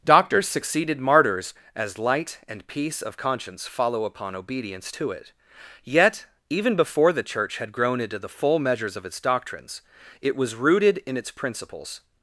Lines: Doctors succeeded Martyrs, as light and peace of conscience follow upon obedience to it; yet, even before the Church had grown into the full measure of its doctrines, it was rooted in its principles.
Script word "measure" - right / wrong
wrong